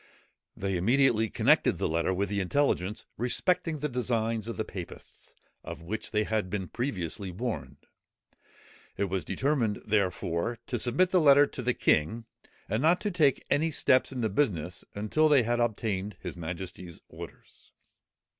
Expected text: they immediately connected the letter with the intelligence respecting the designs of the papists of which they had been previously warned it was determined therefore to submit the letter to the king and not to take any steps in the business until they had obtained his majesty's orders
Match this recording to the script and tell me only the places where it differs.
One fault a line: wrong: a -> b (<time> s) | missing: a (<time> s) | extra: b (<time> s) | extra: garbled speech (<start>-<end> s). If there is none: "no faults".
no faults